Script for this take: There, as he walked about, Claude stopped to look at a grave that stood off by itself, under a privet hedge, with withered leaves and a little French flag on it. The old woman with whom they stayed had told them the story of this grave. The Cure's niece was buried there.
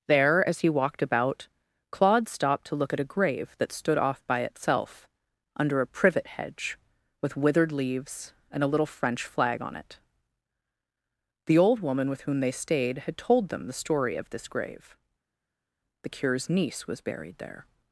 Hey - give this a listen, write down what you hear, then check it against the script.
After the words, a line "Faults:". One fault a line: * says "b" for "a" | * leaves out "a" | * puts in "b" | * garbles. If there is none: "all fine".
There, as he walked about, Claude stopped to look at a grave that stood off by itself, under a privet hedge, with withered leaves and a little French flag on it. The old woman with whom they stayed had told them the story of this grave. The Cure's niece was buried there.
Faults:
all fine